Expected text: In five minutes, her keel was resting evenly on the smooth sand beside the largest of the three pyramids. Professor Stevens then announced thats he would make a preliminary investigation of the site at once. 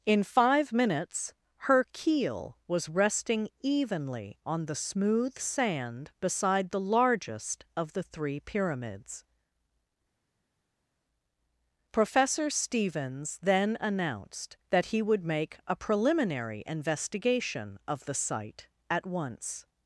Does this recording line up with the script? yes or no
no